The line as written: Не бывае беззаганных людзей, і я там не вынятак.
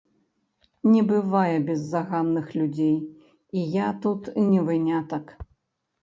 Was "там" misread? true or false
true